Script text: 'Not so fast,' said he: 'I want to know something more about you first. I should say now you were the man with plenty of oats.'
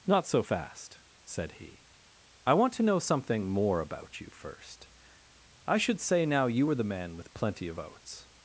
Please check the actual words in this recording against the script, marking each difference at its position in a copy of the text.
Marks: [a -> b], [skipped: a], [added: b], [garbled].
'Not so fast,' said he: 'I want to know something more about you first. I should say now you were the man with plenty of oats.'